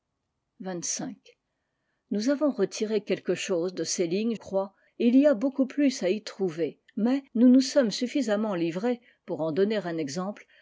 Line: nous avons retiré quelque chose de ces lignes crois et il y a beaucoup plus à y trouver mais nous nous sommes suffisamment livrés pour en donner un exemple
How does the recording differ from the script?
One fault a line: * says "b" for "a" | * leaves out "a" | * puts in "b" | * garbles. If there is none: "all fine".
all fine